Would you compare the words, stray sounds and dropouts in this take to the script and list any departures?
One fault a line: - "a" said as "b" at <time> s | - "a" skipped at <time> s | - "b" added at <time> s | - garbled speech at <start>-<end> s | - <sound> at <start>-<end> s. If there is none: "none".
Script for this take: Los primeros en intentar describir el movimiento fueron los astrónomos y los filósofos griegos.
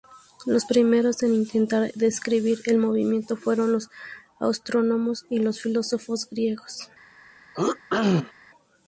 - throat clearing at 7.5-8.3 s